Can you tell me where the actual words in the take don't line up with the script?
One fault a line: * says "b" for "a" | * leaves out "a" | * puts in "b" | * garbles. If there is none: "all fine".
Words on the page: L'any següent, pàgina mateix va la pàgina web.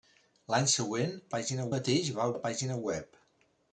all fine